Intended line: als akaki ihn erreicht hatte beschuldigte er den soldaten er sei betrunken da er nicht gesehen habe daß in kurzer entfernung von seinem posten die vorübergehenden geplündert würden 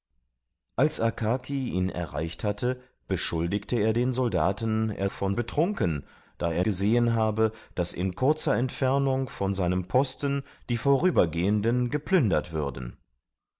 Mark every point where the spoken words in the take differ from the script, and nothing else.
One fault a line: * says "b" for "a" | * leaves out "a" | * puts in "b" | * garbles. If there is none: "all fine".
* says "von" for "sei"
* leaves out "nicht"